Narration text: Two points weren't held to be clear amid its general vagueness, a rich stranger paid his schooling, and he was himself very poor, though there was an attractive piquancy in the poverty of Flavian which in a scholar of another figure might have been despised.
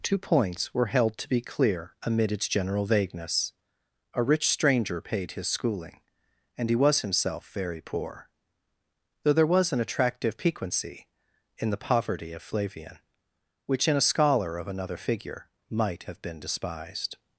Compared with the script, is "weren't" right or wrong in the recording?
wrong